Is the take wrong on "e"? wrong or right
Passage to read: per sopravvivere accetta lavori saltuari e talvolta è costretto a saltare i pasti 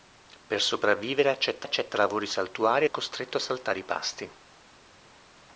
wrong